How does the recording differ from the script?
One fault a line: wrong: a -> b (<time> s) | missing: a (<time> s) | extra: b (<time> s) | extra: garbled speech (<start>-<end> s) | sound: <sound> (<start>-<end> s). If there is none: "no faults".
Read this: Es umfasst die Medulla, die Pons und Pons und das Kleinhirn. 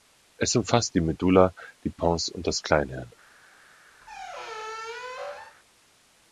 missing: Pons und (2.5 s)
sound: squeak (4.0-5.6 s)